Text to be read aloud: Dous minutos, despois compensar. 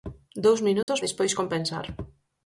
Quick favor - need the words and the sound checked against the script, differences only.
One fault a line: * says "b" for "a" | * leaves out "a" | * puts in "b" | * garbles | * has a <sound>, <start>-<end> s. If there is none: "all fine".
* has a dropout, 0.8-0.9 s